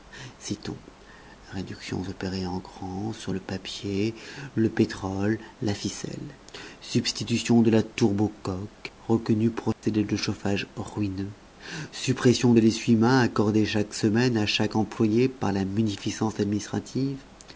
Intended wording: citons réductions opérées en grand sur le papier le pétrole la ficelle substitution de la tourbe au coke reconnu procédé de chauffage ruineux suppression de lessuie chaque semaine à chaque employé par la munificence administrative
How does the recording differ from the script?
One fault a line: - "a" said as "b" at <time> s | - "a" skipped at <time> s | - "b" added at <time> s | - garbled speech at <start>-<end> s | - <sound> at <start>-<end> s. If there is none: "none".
- dropout at 9.7-9.8 s
- "main accordé" added at 13.0 s